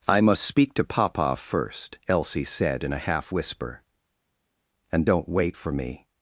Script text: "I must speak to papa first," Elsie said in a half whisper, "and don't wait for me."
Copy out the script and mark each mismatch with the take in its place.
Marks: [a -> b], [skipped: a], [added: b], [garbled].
"I must speak to papa first," Elsie said in a half whisper, "and don't wait for me."